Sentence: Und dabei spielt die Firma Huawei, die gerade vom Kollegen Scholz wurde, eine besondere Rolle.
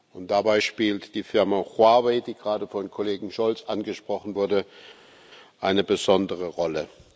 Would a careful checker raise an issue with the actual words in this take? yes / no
yes